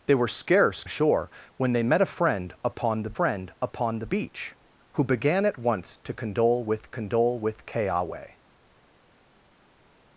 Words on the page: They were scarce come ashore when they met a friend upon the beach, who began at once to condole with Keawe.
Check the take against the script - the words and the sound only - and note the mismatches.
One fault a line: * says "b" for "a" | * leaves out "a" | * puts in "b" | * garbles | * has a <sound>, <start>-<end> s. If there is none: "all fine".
* leaves out "come"
* puts in "friend upon the"
* puts in "condole with"